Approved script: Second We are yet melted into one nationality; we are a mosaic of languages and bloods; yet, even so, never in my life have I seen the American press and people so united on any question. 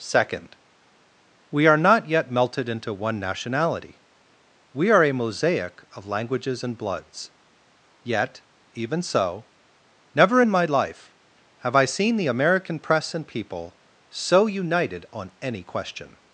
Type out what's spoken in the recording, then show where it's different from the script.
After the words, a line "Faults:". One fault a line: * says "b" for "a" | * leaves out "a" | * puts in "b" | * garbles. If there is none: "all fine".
Second We are not yet melted into one nationality; we are a mosaic of languages and bloods; yet, even so, never in my life have I seen the American press and people so united on any question.
Faults:
* puts in "not"